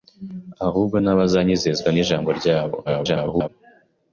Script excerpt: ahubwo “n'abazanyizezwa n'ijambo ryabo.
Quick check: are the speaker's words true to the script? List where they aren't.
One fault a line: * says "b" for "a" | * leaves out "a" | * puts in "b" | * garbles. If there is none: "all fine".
* garbles